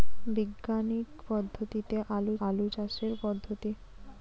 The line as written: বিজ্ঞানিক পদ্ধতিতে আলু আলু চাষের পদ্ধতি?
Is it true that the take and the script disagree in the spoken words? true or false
false